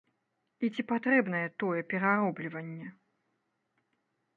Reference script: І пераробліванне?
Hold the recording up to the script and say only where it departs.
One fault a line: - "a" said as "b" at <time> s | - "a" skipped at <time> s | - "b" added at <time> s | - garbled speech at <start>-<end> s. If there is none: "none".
- "ці патрэбнае тое" added at 0.7 s